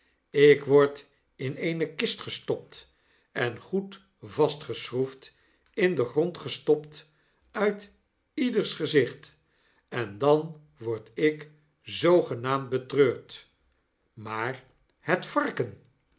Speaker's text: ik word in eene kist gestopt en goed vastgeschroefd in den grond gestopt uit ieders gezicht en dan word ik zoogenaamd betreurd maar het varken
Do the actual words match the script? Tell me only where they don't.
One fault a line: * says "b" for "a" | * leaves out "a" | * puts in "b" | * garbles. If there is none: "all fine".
all fine